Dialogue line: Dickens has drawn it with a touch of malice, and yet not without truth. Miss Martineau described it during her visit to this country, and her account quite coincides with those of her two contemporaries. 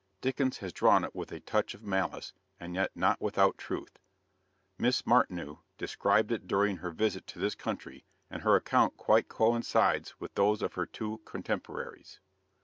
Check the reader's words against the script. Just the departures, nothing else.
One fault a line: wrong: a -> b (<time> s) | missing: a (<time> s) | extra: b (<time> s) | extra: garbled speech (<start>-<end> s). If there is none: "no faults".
no faults